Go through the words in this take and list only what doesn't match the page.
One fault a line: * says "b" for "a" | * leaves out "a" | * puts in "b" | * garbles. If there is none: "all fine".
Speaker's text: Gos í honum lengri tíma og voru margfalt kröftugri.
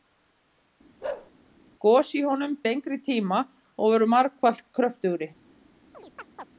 all fine